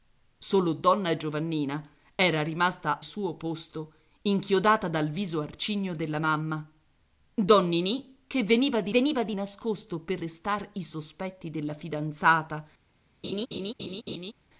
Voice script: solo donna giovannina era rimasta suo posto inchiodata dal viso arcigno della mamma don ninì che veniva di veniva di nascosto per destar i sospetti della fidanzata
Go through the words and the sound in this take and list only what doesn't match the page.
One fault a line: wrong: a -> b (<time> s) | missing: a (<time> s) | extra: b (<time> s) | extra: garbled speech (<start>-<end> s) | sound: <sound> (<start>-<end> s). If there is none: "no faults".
sound: laugh (13.2-14.3 s)